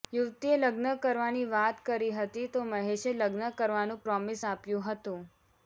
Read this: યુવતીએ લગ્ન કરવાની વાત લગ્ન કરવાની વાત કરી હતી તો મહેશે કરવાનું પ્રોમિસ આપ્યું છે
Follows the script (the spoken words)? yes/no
no